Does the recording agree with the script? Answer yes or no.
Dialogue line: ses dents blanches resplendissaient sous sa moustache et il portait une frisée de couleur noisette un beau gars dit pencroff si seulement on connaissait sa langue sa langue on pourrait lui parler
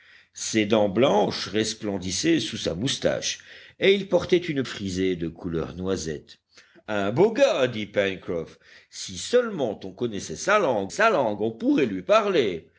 yes